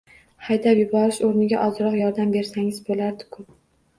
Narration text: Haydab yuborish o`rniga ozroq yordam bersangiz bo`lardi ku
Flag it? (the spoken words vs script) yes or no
no